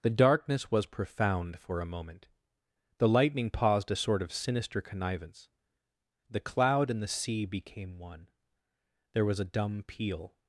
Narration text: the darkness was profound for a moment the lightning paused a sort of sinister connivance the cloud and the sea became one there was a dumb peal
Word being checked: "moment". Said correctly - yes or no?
yes